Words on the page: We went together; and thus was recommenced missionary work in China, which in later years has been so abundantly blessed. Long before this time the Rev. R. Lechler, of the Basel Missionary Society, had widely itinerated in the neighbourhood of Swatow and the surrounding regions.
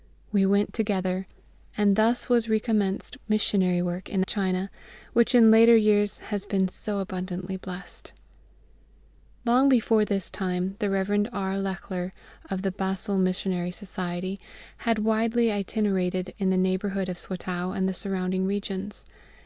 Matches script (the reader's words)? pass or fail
pass